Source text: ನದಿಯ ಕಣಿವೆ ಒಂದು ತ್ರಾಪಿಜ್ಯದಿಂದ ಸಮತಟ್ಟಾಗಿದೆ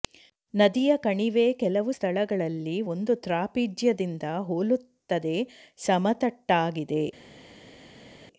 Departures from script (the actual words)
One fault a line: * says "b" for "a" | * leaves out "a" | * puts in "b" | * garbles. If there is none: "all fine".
* puts in "ಕೆಲವು ಸ್ಥಳಗಳಲ್ಲಿ"
* puts in "ಹೋಲುತ್ತದೆ"